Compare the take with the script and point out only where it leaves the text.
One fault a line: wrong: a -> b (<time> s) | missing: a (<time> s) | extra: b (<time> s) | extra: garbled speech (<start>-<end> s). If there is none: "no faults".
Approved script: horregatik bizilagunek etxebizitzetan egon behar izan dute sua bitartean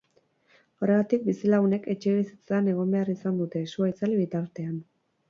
extra: itzali (4.0 s)